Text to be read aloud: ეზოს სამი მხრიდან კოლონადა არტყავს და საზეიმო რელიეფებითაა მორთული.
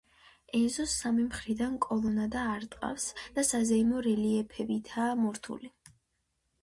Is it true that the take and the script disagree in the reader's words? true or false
false